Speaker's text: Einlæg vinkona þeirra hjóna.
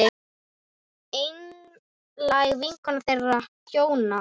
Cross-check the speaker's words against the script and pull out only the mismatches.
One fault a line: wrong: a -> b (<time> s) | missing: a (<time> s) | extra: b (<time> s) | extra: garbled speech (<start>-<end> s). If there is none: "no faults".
no faults